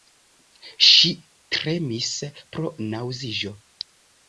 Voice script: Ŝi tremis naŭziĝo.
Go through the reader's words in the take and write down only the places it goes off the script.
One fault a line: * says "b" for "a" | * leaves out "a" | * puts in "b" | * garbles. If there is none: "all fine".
* puts in "pro"